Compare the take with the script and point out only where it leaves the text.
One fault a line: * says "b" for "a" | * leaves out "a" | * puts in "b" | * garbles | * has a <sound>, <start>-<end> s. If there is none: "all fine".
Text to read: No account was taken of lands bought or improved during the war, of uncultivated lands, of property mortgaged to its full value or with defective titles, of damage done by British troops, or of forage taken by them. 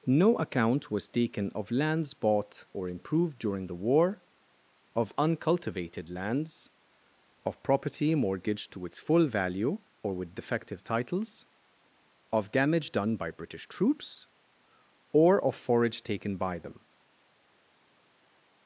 all fine